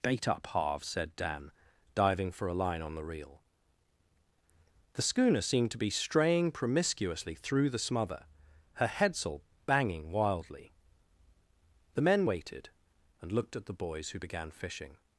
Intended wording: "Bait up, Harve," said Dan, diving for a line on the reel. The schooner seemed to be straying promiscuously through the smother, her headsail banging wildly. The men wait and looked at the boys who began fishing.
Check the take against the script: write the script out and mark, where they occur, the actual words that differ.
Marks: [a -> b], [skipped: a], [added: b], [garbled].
"Bait up, Harve," said Dan, diving for a line on the reel. The schooner seemed to be straying promiscuously through the smother, her headsail banging wildly. The men [wait -> waited] and looked at the boys who began fishing.